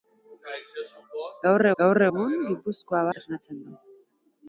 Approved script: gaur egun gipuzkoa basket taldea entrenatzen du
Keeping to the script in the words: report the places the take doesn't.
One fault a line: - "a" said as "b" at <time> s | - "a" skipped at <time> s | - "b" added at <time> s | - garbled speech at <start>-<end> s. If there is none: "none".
- "gaur" added at 1.8 s
- "basket taldea" skipped at 3.1 s